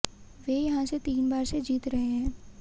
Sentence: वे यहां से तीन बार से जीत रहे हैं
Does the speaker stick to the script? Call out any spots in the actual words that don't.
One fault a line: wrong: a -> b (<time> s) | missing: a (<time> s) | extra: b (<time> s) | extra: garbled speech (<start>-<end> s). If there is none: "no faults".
no faults